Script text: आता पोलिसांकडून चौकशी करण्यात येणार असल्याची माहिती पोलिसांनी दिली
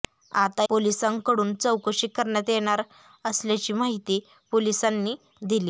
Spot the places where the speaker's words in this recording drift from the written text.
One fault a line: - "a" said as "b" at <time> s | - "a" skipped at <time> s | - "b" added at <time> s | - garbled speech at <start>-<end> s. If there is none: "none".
none